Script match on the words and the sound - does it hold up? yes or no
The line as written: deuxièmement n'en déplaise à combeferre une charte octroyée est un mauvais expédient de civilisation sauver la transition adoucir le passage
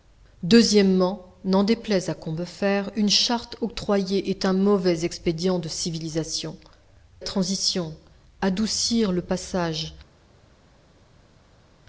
no